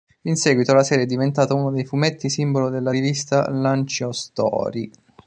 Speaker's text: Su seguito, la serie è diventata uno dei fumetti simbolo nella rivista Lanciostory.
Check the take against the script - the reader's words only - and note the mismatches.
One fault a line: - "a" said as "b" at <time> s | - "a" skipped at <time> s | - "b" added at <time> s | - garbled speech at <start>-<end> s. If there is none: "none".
- "Su" said as "In" at 0.2 s
- "nella" said as "della" at 2.7 s